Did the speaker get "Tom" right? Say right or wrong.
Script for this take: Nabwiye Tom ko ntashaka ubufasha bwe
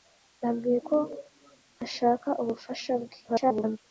wrong